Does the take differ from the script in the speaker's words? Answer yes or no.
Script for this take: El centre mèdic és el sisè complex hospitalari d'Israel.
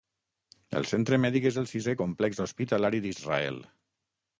no